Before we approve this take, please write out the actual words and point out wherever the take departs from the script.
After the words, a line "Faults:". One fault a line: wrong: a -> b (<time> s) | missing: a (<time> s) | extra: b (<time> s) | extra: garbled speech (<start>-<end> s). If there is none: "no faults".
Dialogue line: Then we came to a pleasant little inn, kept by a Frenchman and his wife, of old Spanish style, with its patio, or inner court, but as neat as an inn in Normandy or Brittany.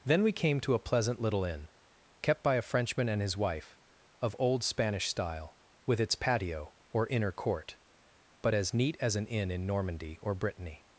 Then we came to a pleasant little inn, kept by a Frenchman and his wife, of old Spanish style, with its patio, or inner court, but as neat as an inn in Normandy or Brittany.
Faults:
no faults